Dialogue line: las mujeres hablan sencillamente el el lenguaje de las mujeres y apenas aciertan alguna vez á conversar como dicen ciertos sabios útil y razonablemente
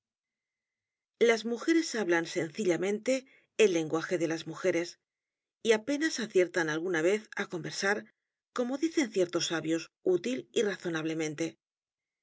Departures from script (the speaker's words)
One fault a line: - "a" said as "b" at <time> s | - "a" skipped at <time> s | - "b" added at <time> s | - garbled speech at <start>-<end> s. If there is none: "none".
- "el" skipped at 3.7 s